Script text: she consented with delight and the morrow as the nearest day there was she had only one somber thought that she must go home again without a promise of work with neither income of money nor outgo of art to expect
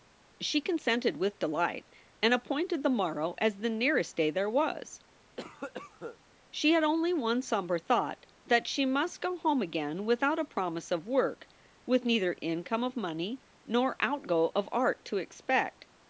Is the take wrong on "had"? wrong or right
right